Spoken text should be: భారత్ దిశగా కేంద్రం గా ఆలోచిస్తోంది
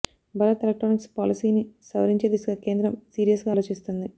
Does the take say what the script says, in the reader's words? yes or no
no